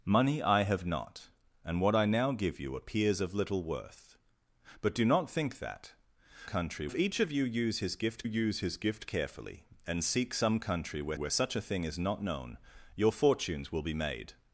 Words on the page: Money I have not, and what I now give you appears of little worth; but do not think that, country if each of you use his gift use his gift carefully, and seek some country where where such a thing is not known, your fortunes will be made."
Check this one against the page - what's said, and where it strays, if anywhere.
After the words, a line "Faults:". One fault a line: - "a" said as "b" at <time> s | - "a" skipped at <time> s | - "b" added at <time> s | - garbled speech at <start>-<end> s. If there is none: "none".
Money I have not, and what I now give you appears of little worth; but do not think that, country if each of you use his gift use his gift carefully, and seek some country where where such a thing is not known, your fortunes will be made."
Faults:
none